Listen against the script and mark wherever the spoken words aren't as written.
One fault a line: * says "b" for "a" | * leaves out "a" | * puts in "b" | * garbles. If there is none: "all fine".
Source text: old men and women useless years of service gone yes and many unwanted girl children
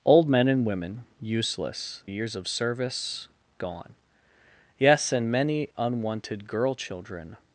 all fine